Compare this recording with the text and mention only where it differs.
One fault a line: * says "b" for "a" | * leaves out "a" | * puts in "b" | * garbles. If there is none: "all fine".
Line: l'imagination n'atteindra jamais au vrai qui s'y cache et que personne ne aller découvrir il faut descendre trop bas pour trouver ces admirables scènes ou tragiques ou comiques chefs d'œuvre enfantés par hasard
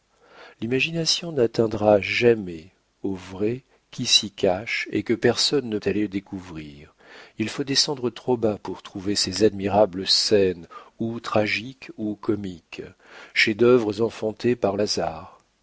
all fine